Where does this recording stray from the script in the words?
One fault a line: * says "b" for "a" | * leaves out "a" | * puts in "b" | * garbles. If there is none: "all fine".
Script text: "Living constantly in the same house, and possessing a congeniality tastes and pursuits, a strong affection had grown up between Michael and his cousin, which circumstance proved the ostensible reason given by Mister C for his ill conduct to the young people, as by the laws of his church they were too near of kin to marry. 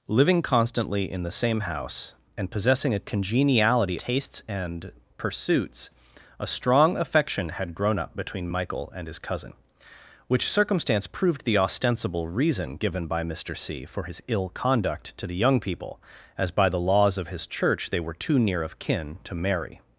all fine